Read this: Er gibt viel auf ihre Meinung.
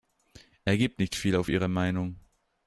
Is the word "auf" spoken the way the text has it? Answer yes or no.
yes